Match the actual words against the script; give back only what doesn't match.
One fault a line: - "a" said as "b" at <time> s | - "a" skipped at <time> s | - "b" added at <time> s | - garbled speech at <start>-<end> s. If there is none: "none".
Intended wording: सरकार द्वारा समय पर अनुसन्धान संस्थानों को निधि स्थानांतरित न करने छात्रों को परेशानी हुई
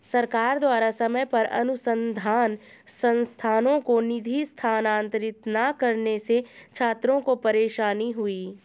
- "से" added at 6.2 s